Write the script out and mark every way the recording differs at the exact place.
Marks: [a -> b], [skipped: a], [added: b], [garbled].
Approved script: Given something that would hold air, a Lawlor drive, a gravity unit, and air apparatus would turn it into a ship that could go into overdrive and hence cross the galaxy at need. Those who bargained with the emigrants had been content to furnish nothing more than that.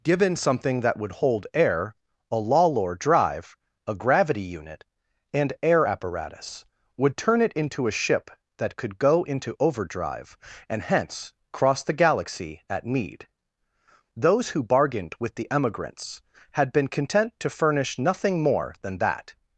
Given something that would hold air, a Lawlor drive, a gravity unit, and air apparatus would turn it into a ship that could go into overdrive and hence cross the galaxy at need. Those who bargained with the emigrants had been content to furnish nothing more than that.